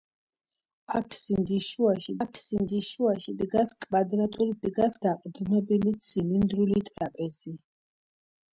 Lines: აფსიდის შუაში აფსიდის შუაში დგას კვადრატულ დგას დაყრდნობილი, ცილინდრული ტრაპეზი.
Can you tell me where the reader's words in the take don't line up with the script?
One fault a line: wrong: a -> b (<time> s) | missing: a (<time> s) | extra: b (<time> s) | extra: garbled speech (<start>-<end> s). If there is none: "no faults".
no faults